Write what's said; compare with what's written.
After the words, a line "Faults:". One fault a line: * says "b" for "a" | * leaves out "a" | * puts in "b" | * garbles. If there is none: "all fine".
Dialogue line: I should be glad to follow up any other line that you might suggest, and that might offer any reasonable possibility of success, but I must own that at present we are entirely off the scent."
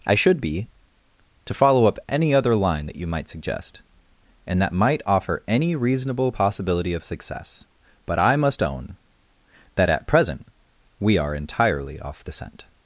I should be to follow up any other line that you might suggest, and that might offer any reasonable possibility of success, but I must own that at present we are entirely off the scent."
Faults:
* leaves out "glad"